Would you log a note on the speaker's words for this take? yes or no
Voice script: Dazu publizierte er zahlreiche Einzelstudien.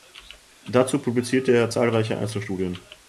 no